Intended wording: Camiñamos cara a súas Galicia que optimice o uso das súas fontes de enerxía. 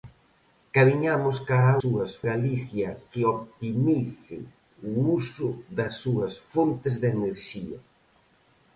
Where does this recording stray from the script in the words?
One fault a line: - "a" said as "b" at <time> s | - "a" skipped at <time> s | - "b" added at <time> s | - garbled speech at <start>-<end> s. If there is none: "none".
none